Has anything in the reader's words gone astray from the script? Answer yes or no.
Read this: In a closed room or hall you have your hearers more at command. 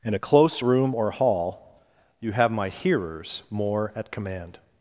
yes